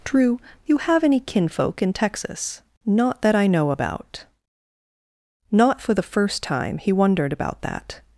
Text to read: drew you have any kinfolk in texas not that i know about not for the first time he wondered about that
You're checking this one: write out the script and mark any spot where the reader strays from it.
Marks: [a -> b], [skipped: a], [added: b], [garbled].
drew you have any kinfolk in texas not that i know about not for the first time he wondered about that